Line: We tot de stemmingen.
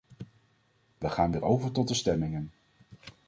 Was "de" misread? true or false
false